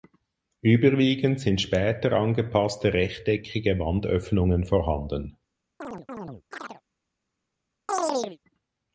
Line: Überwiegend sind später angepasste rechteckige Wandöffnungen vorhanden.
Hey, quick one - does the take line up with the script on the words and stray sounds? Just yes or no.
no